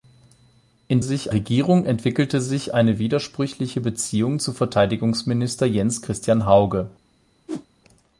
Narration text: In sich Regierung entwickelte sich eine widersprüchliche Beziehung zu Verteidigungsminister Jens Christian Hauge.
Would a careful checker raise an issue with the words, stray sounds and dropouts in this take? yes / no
yes